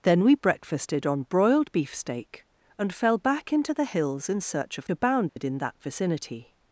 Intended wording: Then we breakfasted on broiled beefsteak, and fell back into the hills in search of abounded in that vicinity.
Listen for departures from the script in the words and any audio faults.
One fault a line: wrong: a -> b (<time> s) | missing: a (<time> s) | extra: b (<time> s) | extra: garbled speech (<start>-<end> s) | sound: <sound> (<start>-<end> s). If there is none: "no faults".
sound: dropout (5.3-5.4 s)